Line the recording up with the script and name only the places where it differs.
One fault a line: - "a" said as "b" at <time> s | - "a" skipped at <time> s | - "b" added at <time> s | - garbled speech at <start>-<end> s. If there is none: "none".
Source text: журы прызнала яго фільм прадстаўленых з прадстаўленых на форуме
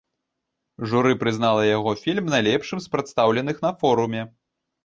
- "прадстаўленых" said as "найлепшым" at 2.4 s